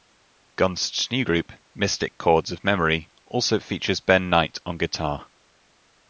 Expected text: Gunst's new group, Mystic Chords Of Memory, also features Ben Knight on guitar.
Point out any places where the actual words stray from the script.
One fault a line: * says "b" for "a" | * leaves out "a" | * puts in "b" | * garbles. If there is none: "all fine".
all fine